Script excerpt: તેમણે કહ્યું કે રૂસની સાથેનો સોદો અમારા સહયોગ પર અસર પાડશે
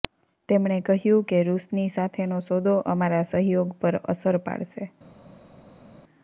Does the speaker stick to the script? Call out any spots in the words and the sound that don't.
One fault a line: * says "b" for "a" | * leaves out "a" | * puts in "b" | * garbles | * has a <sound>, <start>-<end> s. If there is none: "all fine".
all fine